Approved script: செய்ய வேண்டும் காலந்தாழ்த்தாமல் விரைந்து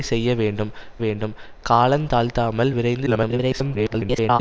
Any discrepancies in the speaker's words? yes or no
yes